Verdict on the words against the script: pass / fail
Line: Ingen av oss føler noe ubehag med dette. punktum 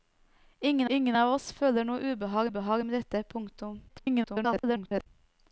fail